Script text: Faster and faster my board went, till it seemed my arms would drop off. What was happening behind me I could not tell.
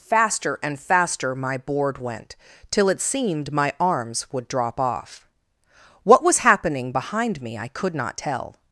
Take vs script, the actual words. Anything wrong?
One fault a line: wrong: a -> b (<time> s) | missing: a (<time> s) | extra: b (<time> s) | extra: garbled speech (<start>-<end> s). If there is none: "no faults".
no faults